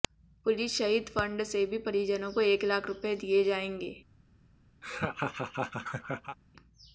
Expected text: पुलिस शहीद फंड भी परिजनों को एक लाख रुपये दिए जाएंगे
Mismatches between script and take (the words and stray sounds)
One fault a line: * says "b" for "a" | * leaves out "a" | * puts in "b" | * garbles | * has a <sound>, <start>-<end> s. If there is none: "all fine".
* puts in "से"
* has a laugh, 4.8-6.4 s